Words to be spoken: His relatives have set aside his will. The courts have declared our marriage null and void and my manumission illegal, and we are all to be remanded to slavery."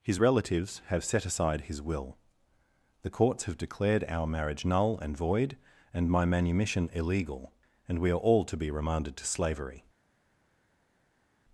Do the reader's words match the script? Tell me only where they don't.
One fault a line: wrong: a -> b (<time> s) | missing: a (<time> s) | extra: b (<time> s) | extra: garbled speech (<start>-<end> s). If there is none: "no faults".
no faults